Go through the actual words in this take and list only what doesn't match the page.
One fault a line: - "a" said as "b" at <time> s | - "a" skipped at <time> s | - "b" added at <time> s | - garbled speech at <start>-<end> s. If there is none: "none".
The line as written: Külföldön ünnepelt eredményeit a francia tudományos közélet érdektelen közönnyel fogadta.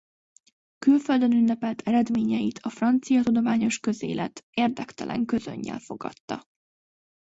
none